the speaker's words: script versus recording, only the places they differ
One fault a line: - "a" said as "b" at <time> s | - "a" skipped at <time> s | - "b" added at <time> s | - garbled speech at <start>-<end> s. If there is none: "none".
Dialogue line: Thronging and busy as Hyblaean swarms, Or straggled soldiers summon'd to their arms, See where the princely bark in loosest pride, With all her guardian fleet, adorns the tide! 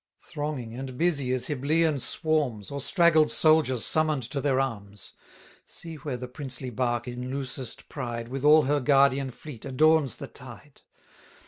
none